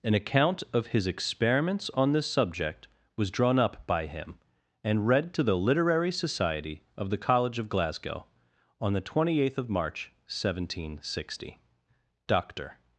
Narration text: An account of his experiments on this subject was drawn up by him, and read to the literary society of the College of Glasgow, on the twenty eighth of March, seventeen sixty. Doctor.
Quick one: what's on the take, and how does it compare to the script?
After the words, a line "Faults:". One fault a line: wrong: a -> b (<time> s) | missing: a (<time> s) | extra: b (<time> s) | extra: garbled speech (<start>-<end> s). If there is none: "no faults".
An account of his experiments on this subject was drawn up by him, and read to the literary society of the College of Glasgow, on the twenty eighth of March, seventeen sixty. Doctor.
Faults:
no faults